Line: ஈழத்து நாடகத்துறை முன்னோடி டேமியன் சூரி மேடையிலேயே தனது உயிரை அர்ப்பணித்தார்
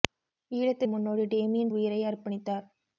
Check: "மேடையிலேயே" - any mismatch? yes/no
yes